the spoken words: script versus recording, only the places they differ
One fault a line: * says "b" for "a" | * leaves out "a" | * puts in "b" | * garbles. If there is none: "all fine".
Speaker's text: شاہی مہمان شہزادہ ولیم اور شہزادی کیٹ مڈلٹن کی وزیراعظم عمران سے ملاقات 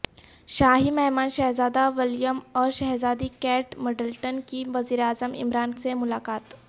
all fine